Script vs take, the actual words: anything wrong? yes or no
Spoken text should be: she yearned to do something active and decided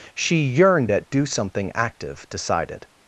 yes